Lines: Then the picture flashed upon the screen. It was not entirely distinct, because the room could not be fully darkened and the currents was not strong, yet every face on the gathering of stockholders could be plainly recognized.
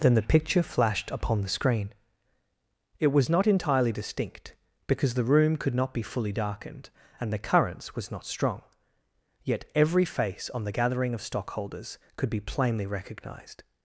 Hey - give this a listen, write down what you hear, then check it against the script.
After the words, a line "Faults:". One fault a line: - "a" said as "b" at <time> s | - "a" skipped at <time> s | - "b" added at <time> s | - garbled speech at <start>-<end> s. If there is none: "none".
Then the picture flashed upon the screen. It was not entirely distinct, because the room could not be fully darkened and the currents was not strong, yet every face on the gathering of stockholders could be plainly recognized.
Faults:
none